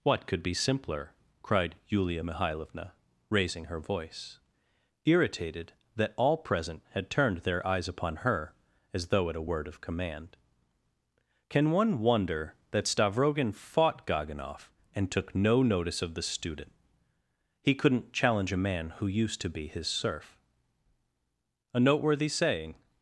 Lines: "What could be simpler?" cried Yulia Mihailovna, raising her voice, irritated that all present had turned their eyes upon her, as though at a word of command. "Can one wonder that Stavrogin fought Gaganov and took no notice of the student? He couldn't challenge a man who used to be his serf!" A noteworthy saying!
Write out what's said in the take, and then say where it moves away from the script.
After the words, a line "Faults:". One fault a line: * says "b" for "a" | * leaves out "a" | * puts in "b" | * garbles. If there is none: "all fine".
"What could be simpler?" cried Yulia Mihailovna, raising her voice, irritated that all present had turned their eyes upon her, as though at a word of command. "Can one wonder that Stavrogin fought Gaganov and took no notice of the student? He couldn't challenge a man who used to be his serf!" A noteworthy saying!
Faults:
all fine